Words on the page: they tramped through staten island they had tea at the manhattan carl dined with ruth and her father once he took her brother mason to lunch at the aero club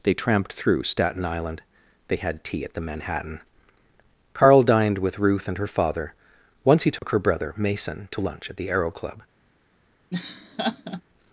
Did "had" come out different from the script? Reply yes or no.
no